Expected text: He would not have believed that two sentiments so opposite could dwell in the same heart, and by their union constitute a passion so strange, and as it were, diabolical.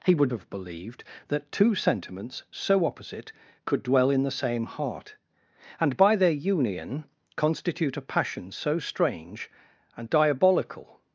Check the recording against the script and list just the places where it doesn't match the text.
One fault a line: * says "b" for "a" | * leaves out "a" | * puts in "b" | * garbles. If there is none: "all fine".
* leaves out "not"
* leaves out "as it were"